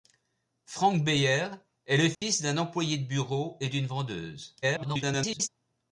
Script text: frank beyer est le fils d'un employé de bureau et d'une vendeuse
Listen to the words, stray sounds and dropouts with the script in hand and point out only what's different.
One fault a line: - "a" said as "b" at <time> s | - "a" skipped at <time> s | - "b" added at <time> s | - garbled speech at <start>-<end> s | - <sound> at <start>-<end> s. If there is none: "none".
- dropout at 2.1-2.2 s
- garbled speech at 4.6-5.5 s